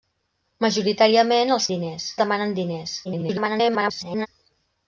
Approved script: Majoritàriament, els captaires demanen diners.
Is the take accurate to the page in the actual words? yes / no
no